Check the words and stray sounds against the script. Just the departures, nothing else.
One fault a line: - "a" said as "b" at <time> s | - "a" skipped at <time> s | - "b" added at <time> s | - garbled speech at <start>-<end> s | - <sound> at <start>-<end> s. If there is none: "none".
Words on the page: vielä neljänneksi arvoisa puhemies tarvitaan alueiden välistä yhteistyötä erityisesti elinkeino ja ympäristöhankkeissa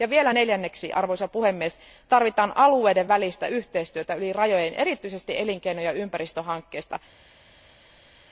- "yli rajojen" added at 4.1 s